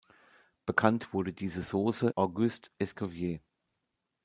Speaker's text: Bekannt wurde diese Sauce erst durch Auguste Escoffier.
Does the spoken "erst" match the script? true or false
false